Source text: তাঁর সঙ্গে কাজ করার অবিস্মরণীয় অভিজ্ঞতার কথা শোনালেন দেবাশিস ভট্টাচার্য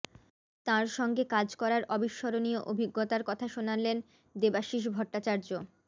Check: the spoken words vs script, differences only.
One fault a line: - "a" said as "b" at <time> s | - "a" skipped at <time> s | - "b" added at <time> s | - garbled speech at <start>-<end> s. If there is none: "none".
none